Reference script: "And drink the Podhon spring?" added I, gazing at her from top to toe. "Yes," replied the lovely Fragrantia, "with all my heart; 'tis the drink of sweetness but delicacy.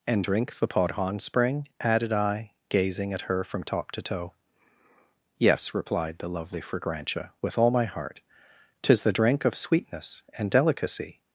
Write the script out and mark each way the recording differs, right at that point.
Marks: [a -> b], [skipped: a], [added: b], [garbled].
"And drink the Podhon spring?" added I, gazing at her from top to toe. "Yes," replied the lovely Fragrantia, "with all my heart; 'tis the drink of sweetness [but -> and] delicacy.